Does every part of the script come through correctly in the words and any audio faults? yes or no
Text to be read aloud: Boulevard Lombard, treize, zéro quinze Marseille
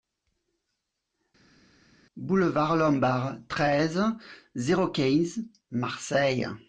yes